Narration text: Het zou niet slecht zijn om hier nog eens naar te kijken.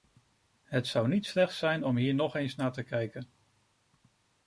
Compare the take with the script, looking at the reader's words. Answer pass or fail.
pass